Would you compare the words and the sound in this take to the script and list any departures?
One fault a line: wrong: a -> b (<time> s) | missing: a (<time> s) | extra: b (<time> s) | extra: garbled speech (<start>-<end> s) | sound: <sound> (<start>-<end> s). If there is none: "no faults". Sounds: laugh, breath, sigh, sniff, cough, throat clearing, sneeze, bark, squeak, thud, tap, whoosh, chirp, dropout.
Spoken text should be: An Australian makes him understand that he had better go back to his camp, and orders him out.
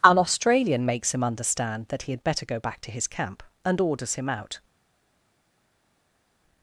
no faults